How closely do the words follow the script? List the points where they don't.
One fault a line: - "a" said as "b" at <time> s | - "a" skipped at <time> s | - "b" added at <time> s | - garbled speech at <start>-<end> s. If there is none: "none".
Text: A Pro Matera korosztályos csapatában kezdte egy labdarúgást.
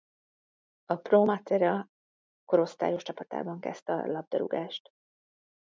- "egy" said as "a" at 3.9 s